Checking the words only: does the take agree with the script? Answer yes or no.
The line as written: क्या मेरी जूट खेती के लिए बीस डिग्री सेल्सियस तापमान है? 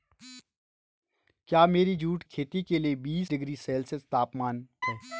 yes